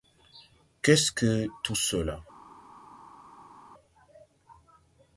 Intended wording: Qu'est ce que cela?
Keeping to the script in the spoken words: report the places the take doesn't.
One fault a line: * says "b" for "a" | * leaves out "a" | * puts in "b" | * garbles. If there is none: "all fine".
* puts in "tout"